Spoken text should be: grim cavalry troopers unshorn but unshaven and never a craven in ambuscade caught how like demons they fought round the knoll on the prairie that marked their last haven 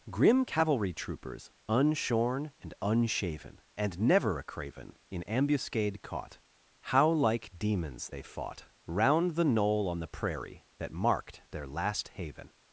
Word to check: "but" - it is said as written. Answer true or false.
false